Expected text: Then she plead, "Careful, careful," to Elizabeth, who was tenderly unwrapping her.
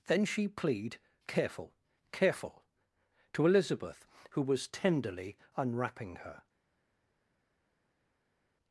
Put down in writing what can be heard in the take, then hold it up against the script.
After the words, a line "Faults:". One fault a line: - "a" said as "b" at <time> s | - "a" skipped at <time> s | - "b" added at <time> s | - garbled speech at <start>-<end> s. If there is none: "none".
Then she plead, "Careful, careful," to Elizabeth, who was tenderly unwrapping her.
Faults:
none